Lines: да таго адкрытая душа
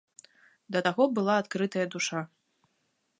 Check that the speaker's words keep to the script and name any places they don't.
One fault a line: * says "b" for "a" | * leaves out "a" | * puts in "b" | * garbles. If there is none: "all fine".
* puts in "была"